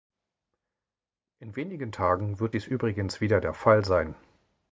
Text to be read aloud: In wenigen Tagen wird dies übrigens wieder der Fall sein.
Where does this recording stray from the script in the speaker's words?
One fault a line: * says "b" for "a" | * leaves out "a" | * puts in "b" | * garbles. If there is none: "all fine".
all fine